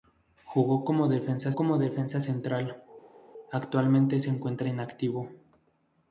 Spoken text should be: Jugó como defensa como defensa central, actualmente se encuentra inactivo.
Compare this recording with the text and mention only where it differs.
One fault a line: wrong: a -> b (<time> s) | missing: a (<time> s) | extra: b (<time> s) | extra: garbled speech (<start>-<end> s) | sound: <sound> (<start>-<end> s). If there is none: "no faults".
no faults